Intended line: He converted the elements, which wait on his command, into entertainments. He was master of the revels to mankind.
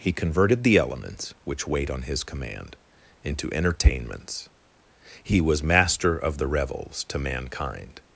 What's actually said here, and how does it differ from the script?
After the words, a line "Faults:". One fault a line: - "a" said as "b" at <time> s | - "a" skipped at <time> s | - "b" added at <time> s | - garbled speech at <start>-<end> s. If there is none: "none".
He converted the elements, which wait on his command, into entertainments. He was master of the revels to mankind.
Faults:
none